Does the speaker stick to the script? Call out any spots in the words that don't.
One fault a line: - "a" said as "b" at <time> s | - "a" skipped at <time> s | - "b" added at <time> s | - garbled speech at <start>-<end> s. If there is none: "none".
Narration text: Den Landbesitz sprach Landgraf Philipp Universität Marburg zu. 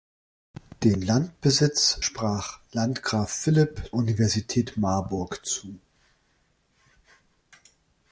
none